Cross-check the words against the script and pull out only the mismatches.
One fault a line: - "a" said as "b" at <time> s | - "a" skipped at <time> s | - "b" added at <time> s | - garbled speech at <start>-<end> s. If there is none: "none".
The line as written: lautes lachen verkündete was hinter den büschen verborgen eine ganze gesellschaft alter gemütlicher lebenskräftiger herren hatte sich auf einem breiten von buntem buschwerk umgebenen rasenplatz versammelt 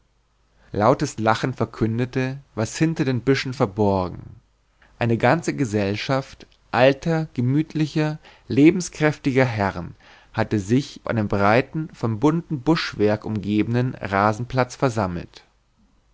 - "auf" skipped at 11.0 s